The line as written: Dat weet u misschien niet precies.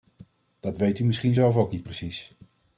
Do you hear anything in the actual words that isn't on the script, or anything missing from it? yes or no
yes